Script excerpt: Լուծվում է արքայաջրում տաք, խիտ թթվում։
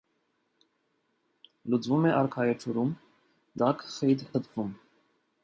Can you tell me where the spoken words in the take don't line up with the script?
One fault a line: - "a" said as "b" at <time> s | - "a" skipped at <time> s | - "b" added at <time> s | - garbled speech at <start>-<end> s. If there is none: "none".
none